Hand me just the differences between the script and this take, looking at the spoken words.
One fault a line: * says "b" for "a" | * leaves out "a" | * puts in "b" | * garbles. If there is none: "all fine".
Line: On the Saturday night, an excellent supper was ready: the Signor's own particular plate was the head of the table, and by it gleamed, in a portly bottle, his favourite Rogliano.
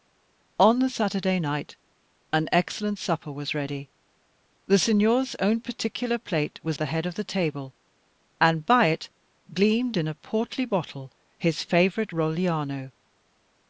all fine